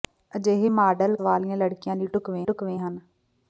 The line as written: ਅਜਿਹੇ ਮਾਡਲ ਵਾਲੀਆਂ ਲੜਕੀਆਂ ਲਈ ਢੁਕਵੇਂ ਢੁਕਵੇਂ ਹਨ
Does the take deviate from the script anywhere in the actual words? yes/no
no